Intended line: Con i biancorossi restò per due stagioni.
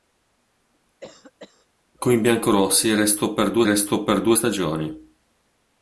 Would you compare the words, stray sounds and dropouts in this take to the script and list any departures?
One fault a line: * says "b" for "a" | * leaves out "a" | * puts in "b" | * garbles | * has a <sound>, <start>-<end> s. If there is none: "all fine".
* has a cough, 1.0-1.7 s
* puts in "restò per due"